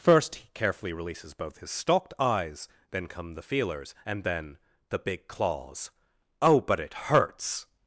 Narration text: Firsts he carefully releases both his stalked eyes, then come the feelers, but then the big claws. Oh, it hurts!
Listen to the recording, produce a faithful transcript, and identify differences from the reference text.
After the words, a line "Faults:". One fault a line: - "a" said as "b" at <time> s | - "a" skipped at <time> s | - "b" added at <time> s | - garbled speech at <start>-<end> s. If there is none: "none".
First he carefully releases both his stalked eyes, then come the feelers, and then the big claws. Oh, but it hurts!
Faults:
- "Firsts" said as "First" at 0.0 s
- "but" said as "and" at 4.1 s
- "but" added at 6.6 s